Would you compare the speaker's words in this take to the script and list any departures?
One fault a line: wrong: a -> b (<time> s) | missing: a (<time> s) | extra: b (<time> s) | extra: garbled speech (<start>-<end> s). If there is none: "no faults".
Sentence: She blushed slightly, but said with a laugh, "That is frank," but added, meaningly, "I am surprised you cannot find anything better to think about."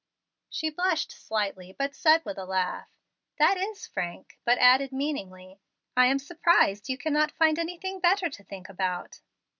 no faults